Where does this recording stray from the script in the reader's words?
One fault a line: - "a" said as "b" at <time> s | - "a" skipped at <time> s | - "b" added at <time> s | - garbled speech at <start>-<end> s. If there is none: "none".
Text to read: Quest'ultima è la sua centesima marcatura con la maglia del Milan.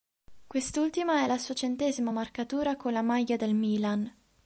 none